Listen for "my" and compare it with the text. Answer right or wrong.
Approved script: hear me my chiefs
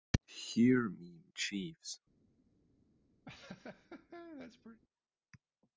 wrong